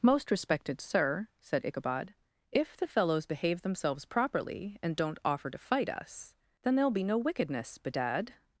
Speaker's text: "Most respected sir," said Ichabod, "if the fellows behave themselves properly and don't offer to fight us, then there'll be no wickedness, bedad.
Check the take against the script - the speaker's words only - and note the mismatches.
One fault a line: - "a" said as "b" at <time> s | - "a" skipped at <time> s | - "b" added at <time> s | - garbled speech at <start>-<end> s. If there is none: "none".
none